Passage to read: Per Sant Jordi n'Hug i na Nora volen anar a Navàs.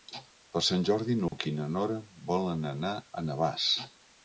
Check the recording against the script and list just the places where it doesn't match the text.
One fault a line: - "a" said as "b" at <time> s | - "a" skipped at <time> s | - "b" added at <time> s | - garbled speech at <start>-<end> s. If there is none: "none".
none